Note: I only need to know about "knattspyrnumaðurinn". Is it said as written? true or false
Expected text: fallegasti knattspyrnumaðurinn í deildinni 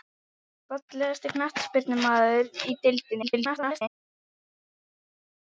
true